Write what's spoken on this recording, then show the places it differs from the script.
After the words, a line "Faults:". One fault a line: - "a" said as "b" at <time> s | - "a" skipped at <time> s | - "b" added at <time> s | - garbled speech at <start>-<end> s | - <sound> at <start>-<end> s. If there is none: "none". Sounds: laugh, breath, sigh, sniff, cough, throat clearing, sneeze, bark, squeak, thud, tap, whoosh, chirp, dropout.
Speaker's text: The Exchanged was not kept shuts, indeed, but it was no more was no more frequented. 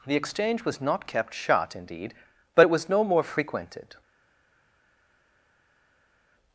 The Exchange was not kept shut, indeed, but it was no more frequented.
Faults:
- "Exchanged" said as "Exchange" at 0.1 s
- "shuts" said as "shut" at 1.3 s
- "was no more" skipped at 3.2 s